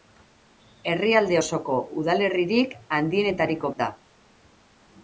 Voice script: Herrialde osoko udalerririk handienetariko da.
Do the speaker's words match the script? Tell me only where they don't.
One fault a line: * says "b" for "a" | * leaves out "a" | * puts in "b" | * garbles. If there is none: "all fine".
all fine